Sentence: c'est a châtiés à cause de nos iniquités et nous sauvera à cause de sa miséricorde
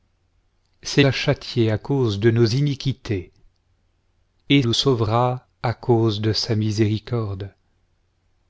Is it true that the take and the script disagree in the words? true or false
false